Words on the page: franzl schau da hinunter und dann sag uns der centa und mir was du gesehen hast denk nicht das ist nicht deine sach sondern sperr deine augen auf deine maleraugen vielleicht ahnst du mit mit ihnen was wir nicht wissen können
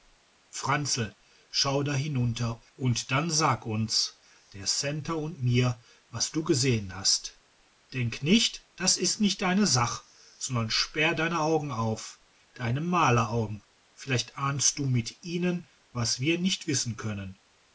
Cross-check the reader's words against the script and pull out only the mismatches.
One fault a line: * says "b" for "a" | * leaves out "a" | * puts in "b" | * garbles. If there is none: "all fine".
* leaves out "mit"